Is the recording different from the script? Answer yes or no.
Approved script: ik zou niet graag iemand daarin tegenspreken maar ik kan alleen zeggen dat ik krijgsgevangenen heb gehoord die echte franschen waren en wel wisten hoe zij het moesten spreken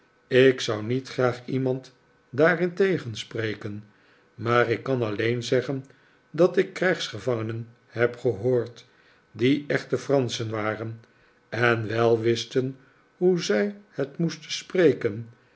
no